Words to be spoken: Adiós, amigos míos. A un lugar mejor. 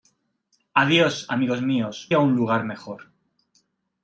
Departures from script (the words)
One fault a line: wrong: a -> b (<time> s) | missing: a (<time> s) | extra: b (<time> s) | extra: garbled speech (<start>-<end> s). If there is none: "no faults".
no faults